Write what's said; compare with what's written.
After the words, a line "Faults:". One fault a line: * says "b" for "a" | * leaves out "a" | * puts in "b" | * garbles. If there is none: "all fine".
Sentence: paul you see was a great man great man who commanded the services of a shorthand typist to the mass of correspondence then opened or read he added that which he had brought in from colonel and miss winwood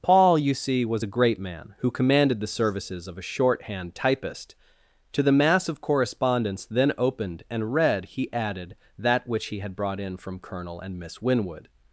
paul you see was a great man who commanded the services of a shorthand typist to the mass of correspondence then opened and read he added that which he had brought in from colonel and miss winwood
Faults:
* leaves out "great man"
* says "and" for "or"